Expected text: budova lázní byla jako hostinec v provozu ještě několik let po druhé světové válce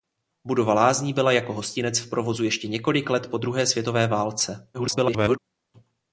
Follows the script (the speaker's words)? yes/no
no